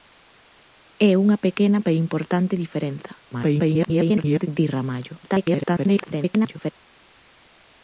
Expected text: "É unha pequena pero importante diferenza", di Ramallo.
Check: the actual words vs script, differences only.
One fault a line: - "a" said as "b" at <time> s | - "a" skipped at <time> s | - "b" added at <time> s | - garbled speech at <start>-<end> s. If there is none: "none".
- garbled speech at 3.3-4.5 s
- garbled speech at 5.2-6.7 s